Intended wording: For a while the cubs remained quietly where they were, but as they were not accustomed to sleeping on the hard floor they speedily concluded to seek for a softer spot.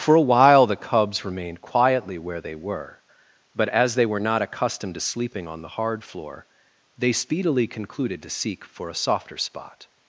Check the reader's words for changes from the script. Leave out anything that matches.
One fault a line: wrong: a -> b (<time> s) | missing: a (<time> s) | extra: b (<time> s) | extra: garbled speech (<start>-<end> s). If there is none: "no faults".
no faults